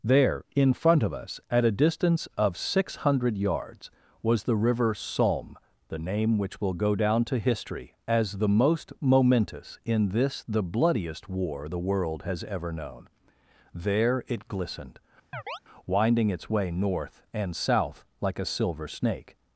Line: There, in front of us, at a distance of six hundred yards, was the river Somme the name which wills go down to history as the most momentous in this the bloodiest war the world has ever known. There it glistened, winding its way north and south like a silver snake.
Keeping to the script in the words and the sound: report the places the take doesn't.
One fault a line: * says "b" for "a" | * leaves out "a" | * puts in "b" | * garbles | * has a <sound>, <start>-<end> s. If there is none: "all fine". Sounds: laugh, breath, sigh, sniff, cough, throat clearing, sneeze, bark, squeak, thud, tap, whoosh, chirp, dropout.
* says "will" for "wills"
* has a chirp, 15.3-15.6 s